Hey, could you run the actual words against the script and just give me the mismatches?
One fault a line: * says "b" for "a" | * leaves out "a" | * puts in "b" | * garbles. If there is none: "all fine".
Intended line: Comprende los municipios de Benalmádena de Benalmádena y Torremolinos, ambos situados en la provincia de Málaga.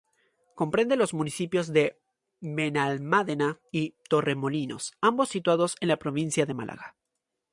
* leaves out "de Benalmádena"